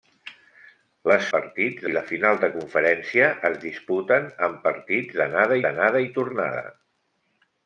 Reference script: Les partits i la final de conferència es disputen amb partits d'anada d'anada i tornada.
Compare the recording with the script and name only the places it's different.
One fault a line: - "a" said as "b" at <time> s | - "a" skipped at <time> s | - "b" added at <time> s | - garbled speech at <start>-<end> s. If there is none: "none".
none